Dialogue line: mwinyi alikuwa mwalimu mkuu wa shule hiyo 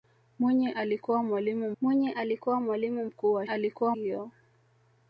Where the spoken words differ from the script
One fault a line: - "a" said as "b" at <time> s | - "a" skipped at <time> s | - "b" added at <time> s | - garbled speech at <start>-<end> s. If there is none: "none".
- "mwinyi alikuwa mwalimu" added at 1.8 s
- "shule" said as "alikuwa" at 3.4 s